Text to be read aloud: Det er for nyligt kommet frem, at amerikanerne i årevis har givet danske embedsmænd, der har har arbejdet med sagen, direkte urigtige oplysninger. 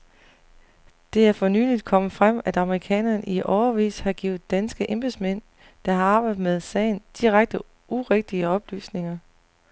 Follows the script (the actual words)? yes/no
no